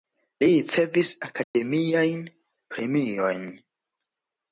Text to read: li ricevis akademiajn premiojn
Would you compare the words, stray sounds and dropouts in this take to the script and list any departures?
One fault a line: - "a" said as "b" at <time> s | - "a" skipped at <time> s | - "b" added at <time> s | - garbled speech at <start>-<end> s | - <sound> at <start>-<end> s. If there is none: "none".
- dropout at 1.4-1.5 s